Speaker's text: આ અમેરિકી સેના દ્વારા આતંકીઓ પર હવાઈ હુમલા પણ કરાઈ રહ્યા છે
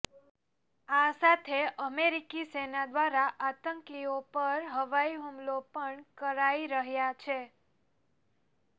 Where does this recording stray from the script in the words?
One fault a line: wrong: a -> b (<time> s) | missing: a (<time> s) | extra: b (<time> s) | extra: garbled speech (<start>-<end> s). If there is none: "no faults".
extra: સાથે (1.1 s)